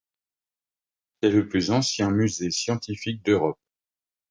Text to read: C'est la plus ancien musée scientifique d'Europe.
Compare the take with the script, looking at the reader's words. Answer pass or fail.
fail